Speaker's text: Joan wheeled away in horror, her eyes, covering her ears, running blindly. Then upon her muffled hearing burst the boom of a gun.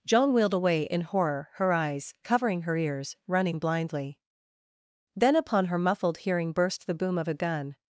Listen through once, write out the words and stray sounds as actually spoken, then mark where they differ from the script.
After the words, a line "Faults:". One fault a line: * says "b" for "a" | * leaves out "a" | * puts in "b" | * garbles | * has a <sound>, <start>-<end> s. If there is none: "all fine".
Joan wheeled away in horror, her eyes, covering her ears, running blindly. Then upon her muffled hearing burst the boom of a gun.
Faults:
all fine